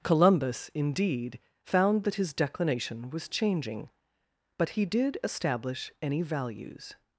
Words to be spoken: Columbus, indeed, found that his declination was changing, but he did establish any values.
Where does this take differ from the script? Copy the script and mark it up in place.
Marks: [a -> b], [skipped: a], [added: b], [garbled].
Columbus, indeed, found that his declination was changing, but he did establish any values.